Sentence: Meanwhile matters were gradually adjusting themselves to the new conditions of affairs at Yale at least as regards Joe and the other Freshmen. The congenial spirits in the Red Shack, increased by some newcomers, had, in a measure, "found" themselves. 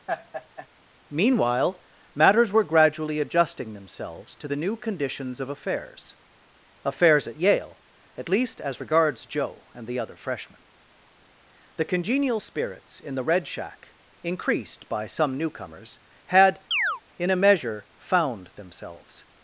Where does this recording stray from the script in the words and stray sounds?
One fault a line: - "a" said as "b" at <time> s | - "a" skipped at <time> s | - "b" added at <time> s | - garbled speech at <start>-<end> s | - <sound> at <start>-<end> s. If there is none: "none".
- laugh at 0.1-0.7 s
- "affairs" added at 6.9 s
- chirp at 16.7-17.0 s